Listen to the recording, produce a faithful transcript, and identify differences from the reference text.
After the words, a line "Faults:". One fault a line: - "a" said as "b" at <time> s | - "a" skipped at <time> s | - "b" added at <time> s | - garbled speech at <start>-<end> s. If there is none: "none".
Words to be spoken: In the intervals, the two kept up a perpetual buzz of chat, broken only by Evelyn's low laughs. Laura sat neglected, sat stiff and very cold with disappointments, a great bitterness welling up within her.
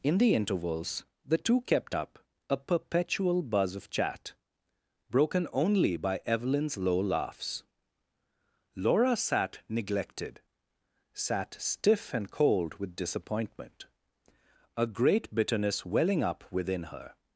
In the intervals, the two kept up a perpetual buzz of chat, broken only by Evelyn's low laughs. Laura sat neglected, sat stiff and cold with disappointment, a great bitterness welling up within her.
Faults:
- "very" skipped at 12.3 s
- "disappointments" said as "disappointment" at 12.9 s